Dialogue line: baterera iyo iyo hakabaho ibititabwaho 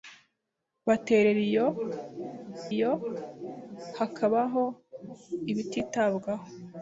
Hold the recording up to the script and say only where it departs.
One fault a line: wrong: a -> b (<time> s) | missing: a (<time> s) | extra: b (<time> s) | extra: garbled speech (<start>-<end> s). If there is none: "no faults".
no faults